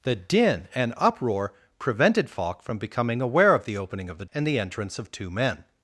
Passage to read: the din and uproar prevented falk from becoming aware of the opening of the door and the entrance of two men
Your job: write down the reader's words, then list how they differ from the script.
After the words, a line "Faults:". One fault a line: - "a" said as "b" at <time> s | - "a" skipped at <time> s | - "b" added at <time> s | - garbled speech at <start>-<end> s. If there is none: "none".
the din and uproar prevented falk from becoming aware of the opening of the and the entrance of two men
Faults:
- "door" skipped at 4.2 s